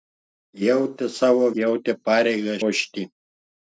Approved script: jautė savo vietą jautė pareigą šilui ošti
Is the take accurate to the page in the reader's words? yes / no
no